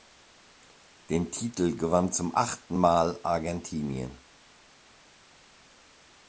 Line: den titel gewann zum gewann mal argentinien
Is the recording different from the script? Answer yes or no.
yes